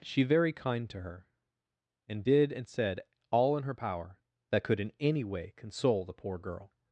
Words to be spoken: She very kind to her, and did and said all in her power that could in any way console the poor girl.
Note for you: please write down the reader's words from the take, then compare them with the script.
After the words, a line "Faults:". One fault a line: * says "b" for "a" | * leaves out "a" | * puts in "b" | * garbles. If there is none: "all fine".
She very kind to her, and did and said all in her power that could in any way console the poor girl.
Faults:
all fine